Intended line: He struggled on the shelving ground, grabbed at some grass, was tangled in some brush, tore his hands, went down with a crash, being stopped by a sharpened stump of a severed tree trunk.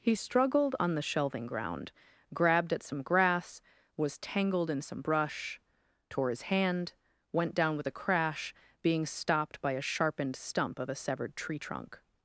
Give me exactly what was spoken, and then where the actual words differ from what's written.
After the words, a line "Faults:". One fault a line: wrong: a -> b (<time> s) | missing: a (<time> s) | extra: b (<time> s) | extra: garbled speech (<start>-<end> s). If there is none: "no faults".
He struggled on the shelving ground, grabbed at some grass, was tangled in some brush, tore his hand, went down with a crash, being stopped by a sharpened stump of a severed tree trunk.
Faults:
wrong: hands -> hand (6.4 s)